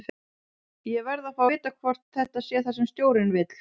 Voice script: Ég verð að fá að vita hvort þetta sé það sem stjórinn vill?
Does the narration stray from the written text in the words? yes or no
yes